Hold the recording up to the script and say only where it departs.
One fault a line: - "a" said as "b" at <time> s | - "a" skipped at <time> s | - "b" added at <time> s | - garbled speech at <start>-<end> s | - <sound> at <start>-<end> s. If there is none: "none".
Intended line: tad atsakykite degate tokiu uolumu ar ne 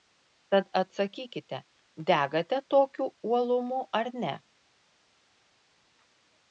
none